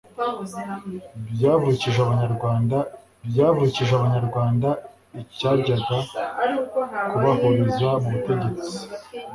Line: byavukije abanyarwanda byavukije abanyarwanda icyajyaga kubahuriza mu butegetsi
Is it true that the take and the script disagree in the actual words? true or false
false